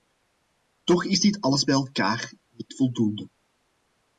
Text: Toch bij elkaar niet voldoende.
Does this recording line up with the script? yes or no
no